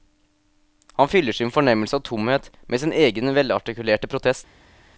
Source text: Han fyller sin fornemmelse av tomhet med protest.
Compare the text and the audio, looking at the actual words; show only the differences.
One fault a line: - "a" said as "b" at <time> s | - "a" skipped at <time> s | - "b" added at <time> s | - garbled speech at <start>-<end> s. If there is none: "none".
- "sin egen velartikulerte" added at 2.8 s